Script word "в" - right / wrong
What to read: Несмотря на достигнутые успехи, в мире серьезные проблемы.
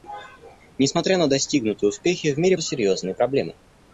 right